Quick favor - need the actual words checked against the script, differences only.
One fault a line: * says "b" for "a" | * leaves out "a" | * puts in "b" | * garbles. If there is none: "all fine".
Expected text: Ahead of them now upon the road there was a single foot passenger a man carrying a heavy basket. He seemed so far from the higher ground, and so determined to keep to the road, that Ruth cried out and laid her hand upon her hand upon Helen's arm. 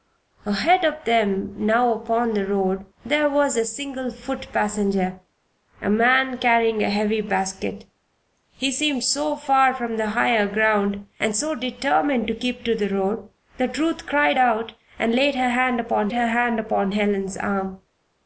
all fine